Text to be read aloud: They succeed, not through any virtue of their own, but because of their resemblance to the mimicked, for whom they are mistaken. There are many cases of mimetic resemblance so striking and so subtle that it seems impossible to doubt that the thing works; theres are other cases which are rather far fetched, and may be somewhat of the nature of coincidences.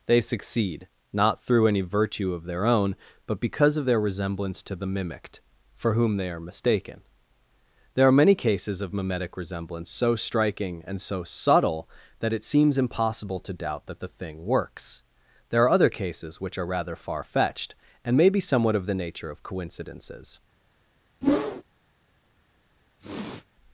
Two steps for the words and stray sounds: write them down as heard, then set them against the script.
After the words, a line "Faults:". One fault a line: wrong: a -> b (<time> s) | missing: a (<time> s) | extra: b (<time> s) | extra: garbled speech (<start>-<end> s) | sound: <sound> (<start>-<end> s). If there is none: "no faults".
They succeed, not through any virtue of their own, but because of their resemblance to the mimicked, for whom they are mistaken. There are many cases of mimetic resemblance so striking and so subtle that it seems impossible to doubt that the thing works; there are other cases which are rather far fetched, and may be somewhat of the nature of coincidences.
Faults:
wrong: theres -> there (15.5 s)
sound: whoosh (21.2-21.6 s)
sound: sniff (23.0-23.5 s)